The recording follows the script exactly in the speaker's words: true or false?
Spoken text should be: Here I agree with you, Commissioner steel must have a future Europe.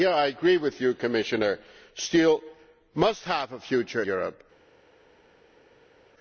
true